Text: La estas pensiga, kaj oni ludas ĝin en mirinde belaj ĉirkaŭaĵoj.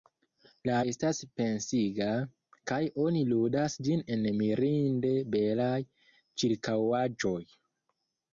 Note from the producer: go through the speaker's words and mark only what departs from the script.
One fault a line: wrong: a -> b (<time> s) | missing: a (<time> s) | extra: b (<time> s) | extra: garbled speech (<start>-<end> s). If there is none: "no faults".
no faults